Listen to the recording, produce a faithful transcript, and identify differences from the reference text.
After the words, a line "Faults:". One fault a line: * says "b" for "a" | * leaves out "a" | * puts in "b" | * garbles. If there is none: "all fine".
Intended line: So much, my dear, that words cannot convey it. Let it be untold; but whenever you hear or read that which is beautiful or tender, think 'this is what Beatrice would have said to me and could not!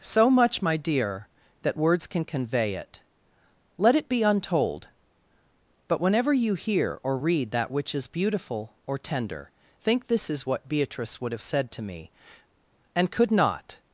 So much, my dear, that words can convey it. Let it be untold; but whenever you hear or read that which is beautiful or tender, think 'this is what Beatrice would have said to me and could not!
Faults:
* says "can" for "cannot"